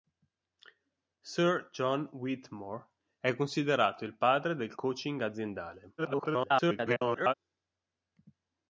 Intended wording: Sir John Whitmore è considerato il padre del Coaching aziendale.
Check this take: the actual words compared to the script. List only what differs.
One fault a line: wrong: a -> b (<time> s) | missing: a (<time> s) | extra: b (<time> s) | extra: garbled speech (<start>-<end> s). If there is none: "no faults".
extra: garbled speech (6.0-7.3 s)